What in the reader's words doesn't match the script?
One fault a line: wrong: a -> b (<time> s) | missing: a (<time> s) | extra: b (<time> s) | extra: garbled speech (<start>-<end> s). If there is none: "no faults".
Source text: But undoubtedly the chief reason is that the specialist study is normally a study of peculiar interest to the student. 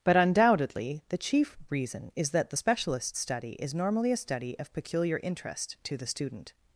no faults